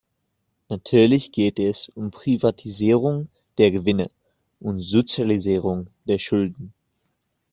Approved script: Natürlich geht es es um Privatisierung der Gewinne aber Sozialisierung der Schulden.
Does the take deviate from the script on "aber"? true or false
true